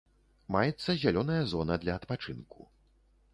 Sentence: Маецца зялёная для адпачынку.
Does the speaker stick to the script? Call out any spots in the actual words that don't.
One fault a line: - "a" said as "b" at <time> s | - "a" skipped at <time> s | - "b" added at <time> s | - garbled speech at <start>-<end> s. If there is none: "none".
- "зона" added at 1.5 s